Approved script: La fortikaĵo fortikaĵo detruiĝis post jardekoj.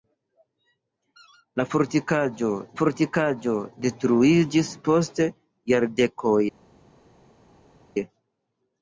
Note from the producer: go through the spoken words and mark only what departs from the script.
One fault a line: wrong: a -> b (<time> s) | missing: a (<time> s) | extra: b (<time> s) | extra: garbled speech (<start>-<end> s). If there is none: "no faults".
no faults